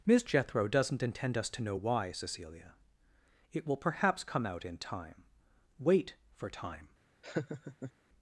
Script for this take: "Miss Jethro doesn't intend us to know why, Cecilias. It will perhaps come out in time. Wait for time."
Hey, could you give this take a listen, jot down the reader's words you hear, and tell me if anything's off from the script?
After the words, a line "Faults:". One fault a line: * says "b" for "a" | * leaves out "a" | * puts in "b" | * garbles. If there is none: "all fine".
"Miss Jethro doesn't intend us to know why, Cecilia. It will perhaps come out in time. Wait for time."
Faults:
* says "Cecilia" for "Cecilias"